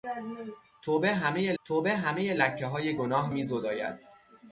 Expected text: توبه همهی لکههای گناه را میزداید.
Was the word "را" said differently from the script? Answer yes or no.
yes